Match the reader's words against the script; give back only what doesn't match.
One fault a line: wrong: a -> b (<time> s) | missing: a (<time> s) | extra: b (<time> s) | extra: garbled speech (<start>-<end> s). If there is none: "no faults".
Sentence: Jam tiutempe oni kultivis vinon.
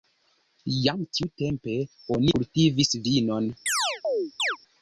no faults